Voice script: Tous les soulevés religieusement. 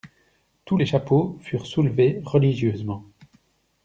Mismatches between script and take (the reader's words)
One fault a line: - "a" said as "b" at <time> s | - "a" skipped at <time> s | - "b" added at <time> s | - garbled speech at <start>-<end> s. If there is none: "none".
- "chapeaux furent" added at 0.8 s